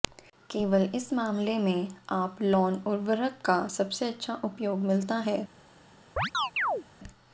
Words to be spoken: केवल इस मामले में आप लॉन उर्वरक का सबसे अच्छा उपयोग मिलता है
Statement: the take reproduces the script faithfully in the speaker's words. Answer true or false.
true